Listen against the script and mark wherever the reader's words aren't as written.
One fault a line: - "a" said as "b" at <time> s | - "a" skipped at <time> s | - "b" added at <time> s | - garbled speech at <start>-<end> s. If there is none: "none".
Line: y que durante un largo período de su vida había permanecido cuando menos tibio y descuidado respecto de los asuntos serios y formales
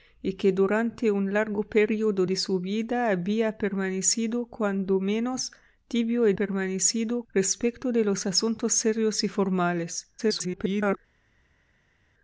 - "descuidado" said as "permanecido" at 6.3 s
- garbled speech at 10.2-11.0 s